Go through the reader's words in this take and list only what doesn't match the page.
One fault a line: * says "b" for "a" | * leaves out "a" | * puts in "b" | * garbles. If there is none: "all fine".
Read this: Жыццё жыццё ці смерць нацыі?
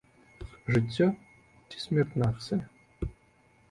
* leaves out "жыццё"